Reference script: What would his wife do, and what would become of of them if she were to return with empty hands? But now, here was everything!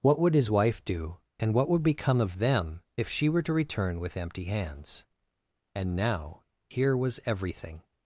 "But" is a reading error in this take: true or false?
true